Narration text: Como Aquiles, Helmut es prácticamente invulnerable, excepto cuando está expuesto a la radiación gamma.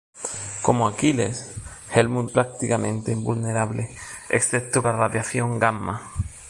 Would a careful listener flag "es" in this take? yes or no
yes